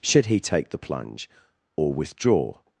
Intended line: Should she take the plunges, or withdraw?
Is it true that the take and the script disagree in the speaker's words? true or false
true